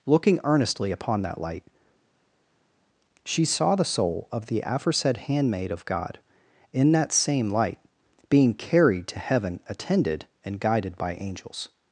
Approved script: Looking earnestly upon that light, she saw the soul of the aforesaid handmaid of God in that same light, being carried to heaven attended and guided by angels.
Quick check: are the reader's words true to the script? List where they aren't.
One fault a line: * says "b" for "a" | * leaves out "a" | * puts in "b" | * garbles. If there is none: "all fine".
all fine